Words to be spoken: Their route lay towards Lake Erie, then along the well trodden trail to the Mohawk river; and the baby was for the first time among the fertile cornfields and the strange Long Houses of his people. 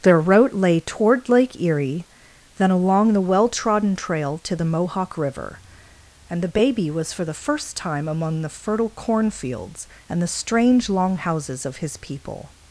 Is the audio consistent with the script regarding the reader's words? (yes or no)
no